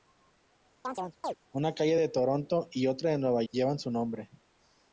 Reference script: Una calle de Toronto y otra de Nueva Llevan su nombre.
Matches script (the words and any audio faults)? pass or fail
fail